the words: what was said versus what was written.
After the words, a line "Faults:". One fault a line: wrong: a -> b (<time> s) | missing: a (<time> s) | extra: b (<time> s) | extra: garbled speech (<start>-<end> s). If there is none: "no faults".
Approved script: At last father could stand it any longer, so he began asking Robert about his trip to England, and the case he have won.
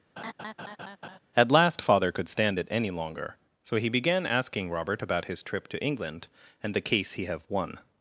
At last father could stand it any longer, so he began asking Robert about his trip to England, and the case he have won.
Faults:
no faults